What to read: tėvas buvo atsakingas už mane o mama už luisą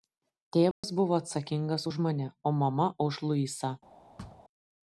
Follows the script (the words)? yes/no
yes